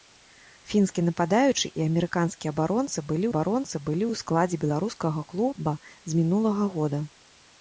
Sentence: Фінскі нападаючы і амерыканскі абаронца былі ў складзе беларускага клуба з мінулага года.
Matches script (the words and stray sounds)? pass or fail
fail